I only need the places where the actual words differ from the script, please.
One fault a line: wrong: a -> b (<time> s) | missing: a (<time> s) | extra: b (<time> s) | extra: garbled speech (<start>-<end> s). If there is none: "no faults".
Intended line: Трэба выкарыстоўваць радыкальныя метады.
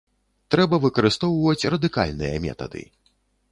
no faults